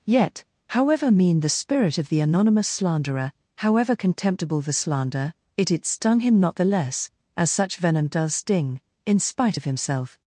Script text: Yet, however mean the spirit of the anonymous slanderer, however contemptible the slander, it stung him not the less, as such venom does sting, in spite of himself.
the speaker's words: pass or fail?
fail